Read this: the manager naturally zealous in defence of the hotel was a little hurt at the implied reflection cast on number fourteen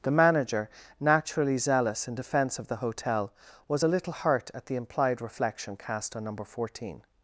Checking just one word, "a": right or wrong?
right